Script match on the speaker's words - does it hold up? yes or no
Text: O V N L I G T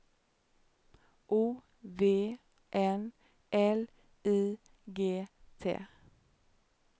yes